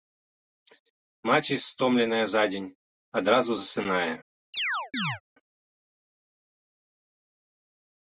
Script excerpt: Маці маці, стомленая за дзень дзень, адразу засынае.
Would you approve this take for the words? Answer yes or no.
no